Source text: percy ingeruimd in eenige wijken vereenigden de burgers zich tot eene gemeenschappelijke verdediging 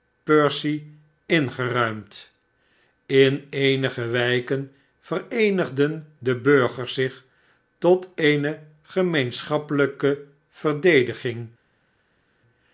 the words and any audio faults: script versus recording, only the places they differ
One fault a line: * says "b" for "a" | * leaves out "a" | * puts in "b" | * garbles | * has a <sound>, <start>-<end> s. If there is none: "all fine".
all fine